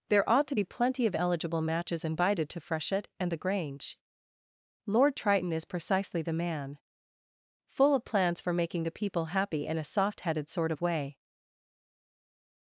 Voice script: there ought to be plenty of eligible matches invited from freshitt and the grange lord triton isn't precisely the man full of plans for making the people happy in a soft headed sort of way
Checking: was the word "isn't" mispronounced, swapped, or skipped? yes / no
yes